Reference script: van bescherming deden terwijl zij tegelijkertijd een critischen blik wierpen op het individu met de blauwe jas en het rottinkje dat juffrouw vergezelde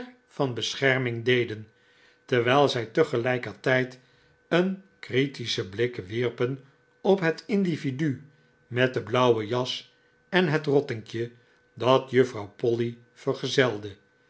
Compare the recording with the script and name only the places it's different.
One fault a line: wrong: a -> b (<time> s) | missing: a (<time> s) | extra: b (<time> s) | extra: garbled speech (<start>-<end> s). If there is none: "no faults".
extra: polly (12.6 s)